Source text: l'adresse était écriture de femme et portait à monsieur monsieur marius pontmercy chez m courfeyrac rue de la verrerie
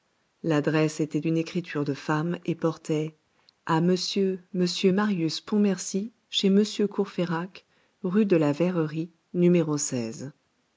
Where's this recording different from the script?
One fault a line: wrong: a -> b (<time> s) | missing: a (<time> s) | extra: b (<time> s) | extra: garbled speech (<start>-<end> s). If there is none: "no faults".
extra: d'une (1.2 s)